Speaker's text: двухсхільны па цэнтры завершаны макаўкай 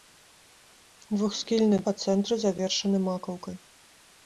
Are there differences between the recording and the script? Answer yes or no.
no